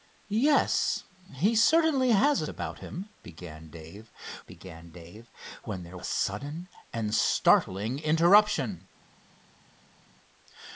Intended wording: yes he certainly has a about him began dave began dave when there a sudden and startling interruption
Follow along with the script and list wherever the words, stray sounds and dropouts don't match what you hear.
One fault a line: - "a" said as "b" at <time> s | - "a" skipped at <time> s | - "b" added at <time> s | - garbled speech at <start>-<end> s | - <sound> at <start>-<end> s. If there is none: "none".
none